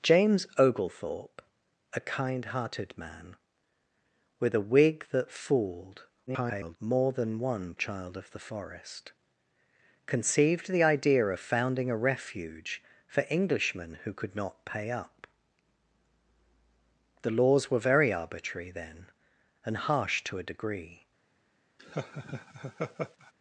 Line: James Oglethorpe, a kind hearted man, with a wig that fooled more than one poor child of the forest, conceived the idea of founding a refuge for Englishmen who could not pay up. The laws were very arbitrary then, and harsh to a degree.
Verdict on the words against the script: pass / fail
fail